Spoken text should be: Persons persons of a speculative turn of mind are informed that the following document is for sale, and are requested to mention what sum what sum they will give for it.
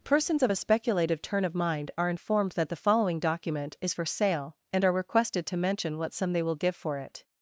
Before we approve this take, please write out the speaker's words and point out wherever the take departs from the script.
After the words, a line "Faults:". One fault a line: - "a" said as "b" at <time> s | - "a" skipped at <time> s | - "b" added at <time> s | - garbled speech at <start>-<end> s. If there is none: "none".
Persons of a speculative turn of mind are informed that the following document is for sale, and are requested to mention what sum they will give for it.
Faults:
- "persons" skipped at 0.4 s
- "what sum" skipped at 6.3 s